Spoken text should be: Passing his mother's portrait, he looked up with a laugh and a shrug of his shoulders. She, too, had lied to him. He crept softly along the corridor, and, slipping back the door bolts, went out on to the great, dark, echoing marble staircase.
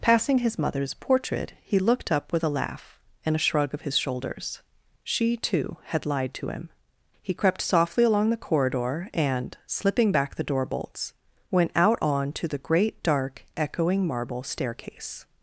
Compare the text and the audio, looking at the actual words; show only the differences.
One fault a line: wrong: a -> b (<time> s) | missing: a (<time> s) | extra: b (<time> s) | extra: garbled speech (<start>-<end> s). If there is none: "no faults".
no faults